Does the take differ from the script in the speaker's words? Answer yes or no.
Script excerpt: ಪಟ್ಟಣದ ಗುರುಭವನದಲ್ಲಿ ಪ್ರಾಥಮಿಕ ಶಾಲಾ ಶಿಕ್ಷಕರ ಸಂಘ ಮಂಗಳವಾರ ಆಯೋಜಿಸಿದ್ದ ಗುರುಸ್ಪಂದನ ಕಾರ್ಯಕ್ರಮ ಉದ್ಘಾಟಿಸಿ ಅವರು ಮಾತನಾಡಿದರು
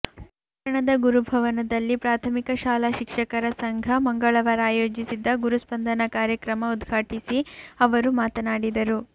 no